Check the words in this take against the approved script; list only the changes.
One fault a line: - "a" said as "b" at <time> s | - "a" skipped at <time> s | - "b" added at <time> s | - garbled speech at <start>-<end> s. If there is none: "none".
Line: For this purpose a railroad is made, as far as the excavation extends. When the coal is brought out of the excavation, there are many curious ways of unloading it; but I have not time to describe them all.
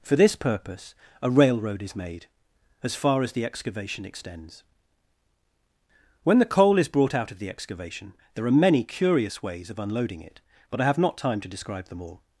none